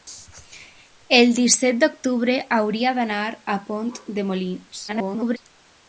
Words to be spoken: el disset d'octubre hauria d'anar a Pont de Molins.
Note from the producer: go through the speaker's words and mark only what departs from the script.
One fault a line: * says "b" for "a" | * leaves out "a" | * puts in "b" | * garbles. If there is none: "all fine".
* garbles